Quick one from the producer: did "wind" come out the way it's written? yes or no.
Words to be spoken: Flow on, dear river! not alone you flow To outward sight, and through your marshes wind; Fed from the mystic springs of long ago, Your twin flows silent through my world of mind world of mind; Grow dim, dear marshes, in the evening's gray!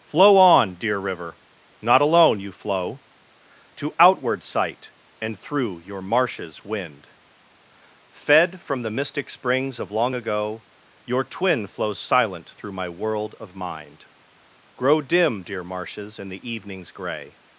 yes